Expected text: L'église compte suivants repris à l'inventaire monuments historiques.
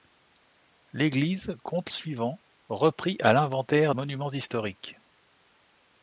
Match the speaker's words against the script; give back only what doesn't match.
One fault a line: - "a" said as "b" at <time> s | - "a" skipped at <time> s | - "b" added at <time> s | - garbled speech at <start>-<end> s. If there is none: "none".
none